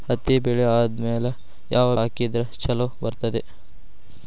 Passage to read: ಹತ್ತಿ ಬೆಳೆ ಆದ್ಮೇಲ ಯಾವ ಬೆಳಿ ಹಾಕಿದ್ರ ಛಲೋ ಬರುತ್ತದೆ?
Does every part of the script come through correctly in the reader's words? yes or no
no